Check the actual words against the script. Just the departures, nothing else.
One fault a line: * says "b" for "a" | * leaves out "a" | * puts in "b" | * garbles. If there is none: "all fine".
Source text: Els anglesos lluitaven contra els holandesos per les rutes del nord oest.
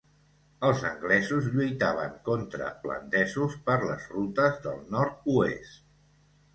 * leaves out "els"